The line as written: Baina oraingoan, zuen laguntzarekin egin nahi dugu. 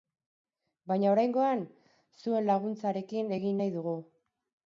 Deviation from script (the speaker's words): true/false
false